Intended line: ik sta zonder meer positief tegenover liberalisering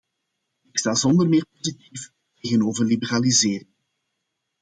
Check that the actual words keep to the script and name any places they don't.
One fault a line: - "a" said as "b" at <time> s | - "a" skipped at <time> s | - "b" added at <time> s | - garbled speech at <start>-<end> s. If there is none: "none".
none